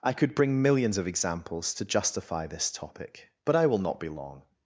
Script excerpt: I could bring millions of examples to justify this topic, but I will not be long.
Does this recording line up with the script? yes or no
yes